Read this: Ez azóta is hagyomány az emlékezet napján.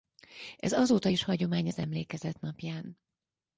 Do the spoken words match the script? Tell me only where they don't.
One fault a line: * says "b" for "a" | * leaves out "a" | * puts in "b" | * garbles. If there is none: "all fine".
all fine